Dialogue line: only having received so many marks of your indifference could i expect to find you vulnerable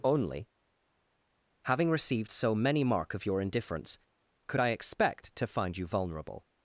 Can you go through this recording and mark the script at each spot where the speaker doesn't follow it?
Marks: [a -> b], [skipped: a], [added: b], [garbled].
only having received so many [marks -> mark] of your indifference could i expect to find you vulnerable